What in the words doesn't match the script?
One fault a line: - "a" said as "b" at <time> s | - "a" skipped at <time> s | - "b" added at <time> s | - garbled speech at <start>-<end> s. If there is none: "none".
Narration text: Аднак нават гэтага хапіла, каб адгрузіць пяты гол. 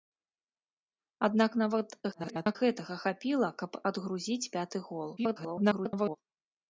- garbled speech at 2.1-2.6 s
- garbled speech at 5.2-6.2 s